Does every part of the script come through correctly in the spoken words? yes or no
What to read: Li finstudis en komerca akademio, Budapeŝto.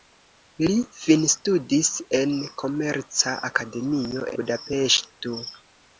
yes